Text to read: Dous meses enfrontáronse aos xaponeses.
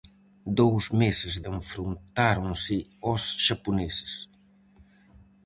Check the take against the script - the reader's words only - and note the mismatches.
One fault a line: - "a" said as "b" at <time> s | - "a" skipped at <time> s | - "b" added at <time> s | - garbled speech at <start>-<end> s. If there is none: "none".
none